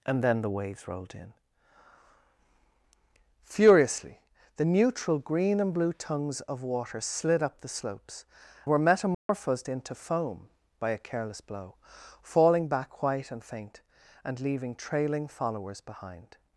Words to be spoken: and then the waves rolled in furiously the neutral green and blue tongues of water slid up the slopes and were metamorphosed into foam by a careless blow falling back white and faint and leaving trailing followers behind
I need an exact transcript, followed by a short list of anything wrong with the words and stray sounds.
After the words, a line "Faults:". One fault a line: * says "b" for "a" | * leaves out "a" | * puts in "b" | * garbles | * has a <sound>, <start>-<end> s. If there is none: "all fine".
and then the waves rolled in furiously the neutral green and blue tongues of water slid up the slopes were metamorphosed into foam by a careless blow falling back white and faint and leaving trailing followers behind
Faults:
* leaves out "and"
* has a dropout, 9.1-9.3 s